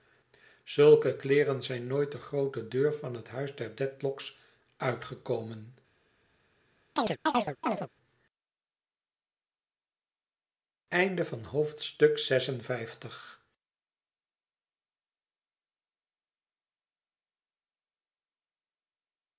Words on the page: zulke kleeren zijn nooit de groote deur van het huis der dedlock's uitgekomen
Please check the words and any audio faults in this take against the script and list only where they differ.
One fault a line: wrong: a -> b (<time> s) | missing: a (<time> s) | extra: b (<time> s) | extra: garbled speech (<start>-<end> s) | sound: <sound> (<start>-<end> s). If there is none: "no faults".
sound: chirp (7.0-7.9 s)